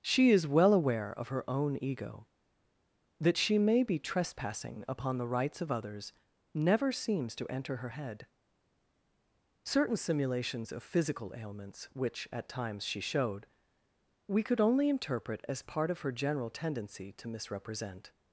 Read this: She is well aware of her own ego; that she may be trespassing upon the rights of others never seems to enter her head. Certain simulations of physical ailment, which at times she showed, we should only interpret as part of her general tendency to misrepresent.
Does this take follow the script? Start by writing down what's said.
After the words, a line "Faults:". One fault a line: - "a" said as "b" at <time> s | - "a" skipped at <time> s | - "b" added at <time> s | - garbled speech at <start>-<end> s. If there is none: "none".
She is well aware of her own ego; that she may be trespassing upon the rights of others never seems to enter her head. Certain simulations of physical ailments, which at times she showed, we could only interpret as part of her general tendency to misrepresent.
Faults:
- "ailment" said as "ailments" at 11.3 s
- "should" said as "could" at 14.4 s